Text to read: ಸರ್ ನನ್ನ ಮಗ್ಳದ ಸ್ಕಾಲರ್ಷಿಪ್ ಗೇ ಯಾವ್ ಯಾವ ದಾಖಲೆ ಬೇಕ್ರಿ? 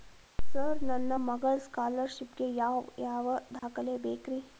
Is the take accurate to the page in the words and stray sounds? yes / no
no